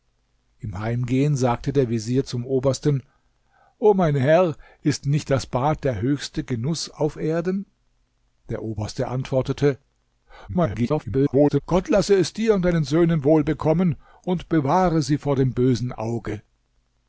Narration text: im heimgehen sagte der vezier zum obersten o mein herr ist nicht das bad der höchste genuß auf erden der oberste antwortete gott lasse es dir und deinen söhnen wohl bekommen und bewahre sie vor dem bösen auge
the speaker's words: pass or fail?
fail